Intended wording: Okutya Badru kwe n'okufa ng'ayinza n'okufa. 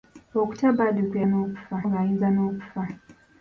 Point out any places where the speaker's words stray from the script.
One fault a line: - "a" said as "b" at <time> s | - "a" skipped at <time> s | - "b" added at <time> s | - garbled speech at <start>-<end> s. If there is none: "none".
none